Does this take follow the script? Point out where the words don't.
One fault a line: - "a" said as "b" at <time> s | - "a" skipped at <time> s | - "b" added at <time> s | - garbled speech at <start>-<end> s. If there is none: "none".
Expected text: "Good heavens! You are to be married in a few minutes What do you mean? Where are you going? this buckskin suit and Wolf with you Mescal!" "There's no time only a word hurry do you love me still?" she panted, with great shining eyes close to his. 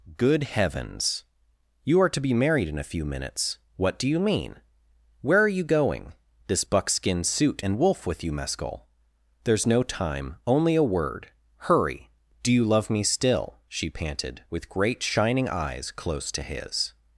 none